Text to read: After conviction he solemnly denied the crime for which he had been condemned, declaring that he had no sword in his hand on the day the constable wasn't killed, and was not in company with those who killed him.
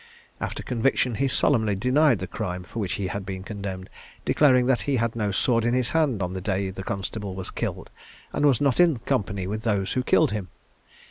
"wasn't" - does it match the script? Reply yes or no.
no